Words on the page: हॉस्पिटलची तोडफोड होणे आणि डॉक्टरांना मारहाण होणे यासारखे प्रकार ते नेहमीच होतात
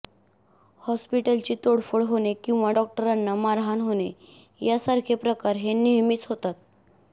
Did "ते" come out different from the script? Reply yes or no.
yes